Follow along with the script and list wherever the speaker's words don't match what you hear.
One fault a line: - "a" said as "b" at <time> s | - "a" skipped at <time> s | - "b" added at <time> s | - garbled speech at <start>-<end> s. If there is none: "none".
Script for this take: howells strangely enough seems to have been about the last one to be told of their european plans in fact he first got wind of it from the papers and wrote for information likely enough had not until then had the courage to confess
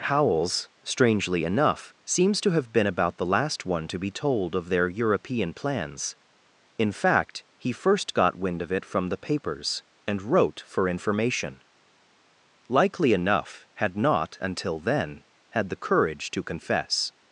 none